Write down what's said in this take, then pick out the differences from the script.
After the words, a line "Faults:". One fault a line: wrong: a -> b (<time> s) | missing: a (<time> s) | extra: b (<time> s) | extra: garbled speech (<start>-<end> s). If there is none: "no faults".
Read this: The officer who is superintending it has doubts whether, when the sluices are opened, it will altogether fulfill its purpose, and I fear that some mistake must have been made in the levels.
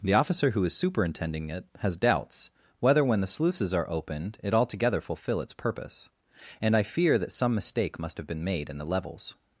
The officer who is superintending it has doubts whether, when the sluices are opened, it altogether fulfill its purpose, and I fear that some mistake must have been made in the levels.
Faults:
missing: will (4.5 s)